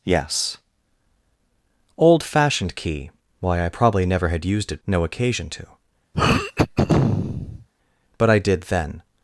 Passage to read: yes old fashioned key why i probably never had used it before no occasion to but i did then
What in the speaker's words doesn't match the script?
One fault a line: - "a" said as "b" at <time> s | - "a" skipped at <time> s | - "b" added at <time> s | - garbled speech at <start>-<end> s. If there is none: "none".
- "before" skipped at 4.8 s